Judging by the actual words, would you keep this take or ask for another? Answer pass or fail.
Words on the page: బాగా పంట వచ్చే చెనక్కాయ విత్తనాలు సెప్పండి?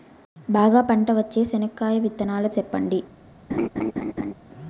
pass